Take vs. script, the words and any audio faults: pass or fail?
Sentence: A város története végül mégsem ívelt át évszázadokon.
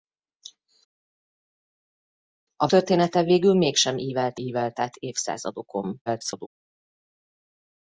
fail